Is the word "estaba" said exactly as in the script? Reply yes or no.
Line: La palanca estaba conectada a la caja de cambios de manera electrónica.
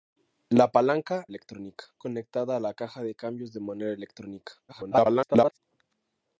no